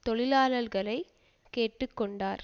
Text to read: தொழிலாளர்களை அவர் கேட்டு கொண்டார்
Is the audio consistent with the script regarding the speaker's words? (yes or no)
no